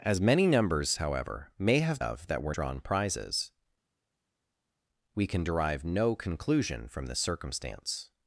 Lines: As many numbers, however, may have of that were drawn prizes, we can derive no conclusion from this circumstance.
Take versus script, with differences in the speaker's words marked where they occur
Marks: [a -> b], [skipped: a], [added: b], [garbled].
As many numbers, however, may have of that were drawn prizes, we can derive no conclusion from this circumstance.